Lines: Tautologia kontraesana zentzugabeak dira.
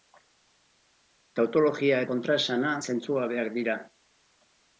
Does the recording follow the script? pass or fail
pass